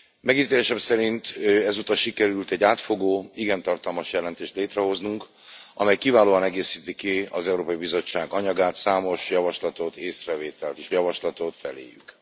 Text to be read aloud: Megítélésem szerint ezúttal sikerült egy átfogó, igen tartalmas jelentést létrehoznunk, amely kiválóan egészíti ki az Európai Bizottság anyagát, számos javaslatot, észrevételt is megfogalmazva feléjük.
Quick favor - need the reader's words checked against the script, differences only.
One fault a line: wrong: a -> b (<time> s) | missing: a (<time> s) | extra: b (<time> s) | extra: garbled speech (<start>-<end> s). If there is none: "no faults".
wrong: megfogalmazva -> javaslatot (10.9 s)